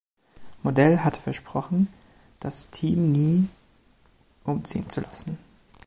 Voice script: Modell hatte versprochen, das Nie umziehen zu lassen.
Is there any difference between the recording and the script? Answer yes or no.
yes